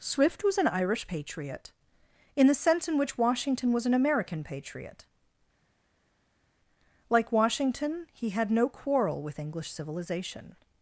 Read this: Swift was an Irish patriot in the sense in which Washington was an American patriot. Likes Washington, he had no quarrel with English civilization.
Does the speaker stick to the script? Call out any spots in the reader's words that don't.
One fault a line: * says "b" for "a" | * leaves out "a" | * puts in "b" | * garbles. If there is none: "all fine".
* says "Like" for "Likes"